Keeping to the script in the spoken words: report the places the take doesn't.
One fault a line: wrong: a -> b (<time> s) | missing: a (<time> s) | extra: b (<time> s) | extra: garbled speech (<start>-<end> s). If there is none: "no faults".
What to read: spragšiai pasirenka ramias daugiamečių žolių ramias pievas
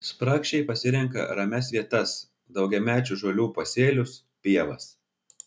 extra: vietas (1.7 s)
wrong: ramias -> pasėlius (3.6 s)